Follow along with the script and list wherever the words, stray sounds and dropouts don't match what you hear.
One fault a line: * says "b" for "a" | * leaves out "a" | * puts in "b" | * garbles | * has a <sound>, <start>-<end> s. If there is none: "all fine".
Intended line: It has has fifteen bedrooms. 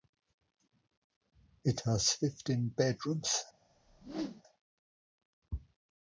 * leaves out "has"
* has a whoosh, 3.7-4.4 s